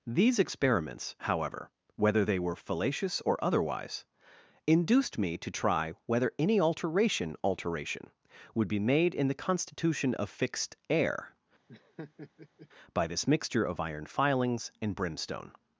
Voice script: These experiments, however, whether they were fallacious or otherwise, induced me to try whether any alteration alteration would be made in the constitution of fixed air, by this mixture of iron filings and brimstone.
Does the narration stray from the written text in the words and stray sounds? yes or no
yes